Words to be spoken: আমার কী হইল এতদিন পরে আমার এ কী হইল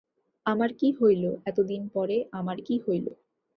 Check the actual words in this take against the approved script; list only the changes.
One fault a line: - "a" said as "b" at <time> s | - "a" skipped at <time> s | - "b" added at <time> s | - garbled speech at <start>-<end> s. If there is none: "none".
- "এ" skipped at 2.6 s